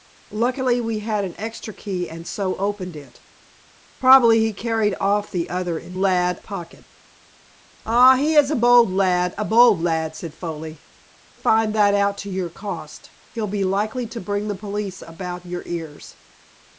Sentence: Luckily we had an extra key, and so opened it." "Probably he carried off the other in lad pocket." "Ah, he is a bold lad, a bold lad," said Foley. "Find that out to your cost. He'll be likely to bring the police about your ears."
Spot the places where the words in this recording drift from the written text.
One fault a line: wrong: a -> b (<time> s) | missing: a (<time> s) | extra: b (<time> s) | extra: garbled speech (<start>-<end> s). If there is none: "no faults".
no faults